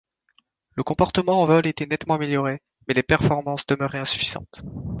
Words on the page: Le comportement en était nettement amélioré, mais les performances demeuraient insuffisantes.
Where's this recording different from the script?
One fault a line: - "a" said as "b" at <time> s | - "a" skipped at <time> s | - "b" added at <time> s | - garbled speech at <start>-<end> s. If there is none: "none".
- "vol" added at 1.4 s